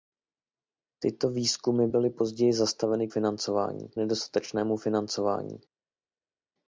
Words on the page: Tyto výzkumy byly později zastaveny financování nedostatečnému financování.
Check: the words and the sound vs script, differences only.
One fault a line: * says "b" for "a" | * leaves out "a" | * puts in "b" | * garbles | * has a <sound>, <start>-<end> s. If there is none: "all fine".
all fine